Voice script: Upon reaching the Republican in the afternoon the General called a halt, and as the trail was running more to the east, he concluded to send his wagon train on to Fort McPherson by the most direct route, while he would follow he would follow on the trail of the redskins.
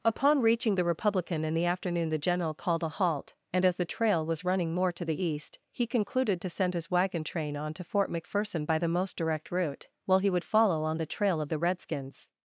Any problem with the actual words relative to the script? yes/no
yes